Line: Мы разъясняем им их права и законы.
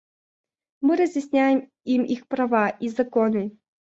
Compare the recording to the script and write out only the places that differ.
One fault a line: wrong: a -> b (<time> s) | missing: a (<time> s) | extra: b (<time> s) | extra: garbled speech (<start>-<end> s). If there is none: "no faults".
no faults